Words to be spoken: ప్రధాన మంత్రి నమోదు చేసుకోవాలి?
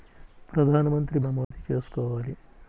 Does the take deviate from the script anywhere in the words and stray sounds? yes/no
yes